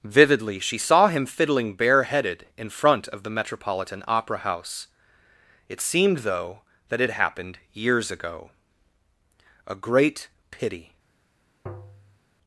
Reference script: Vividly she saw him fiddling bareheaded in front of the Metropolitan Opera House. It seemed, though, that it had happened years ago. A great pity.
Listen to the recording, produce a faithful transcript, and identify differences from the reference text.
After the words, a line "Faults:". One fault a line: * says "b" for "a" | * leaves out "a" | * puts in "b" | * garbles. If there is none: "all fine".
Vividly she saw him fiddling bareheaded in front of the Metropolitan Opera House. It seemed, though, that it happened years ago. A great pity.
Faults:
* leaves out "had"